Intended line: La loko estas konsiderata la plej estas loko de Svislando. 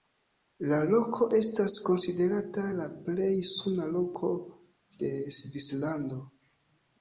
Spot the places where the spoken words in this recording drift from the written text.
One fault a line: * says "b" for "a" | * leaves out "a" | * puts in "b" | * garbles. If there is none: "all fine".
* says "suna" for "estas"